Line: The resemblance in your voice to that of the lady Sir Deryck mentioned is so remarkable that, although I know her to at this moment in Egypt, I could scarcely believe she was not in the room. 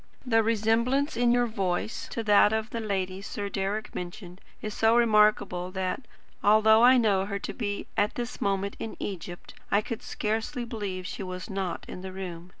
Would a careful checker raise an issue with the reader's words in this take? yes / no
yes